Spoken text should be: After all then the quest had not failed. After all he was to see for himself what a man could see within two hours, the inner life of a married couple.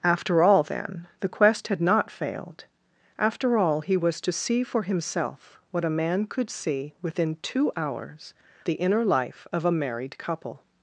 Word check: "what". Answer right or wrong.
right